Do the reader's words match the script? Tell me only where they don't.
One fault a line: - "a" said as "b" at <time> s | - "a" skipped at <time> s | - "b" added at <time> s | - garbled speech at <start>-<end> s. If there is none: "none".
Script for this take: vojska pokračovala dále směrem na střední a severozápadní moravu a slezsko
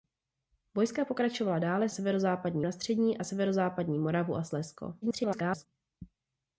- "směrem" said as "severozápadní" at 1.9 s
- garbled speech at 5.0-5.7 s